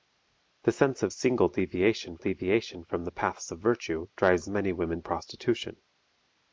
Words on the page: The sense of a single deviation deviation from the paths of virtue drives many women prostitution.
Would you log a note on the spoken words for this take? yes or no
no